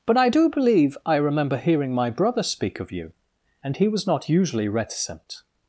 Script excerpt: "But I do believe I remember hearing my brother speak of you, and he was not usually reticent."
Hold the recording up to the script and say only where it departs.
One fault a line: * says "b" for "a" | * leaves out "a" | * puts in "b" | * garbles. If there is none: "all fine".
all fine